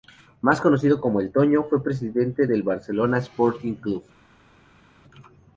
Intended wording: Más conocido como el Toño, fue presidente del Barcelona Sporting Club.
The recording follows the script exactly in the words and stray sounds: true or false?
true